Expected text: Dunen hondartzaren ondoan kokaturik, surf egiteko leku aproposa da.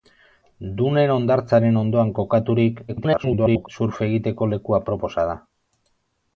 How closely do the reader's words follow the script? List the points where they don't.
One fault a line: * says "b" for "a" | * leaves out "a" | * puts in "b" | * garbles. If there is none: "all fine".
* garbles